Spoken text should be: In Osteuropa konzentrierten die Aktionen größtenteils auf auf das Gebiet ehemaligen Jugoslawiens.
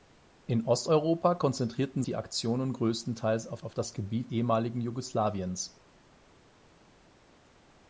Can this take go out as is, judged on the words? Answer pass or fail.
pass